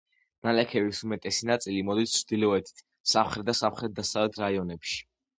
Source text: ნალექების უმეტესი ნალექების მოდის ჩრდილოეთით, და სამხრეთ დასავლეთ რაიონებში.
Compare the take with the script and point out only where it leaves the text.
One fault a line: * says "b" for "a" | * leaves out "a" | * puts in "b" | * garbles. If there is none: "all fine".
* says "ნაწილი" for "ნალექების"
* puts in "სამხრეთ"